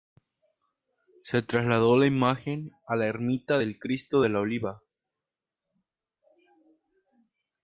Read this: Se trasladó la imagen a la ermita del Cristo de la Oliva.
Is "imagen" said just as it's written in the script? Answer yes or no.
yes